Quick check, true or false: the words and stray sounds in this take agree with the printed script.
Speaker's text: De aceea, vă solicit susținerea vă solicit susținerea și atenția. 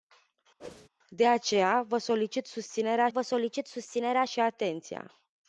false